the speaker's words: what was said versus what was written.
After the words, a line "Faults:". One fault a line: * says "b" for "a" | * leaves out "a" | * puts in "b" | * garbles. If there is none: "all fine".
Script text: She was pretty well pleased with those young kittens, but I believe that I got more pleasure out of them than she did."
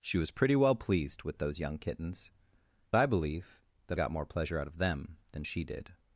She was pretty well pleased with those young kittens, I believe that got more pleasure out of them than she did."
Faults:
* leaves out "but"
* leaves out "I"